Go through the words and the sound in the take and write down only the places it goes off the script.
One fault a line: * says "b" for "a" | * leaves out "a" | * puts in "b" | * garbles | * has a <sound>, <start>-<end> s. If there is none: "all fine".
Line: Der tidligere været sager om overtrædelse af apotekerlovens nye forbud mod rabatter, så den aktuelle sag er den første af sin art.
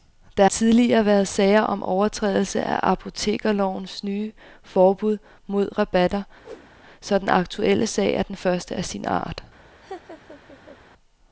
* has a whoosh, 6.4-6.7 s
* has a laugh, 9.8-10.8 s